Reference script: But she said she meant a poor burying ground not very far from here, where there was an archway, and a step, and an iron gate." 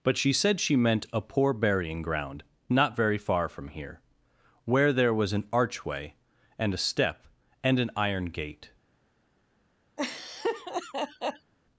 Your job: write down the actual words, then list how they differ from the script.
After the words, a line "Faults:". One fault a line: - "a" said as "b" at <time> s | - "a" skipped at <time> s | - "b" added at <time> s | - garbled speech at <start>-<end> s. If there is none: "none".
But she said she meant a poor burying ground not very far from here, where there was an archway, and a step, and an iron gate."
Faults:
none